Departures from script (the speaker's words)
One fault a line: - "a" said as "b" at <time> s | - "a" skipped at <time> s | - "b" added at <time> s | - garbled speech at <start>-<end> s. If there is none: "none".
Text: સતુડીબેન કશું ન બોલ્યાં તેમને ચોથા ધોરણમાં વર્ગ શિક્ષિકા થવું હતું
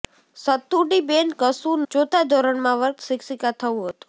- "ન બોલ્યાં તેમને" skipped at 1.8 s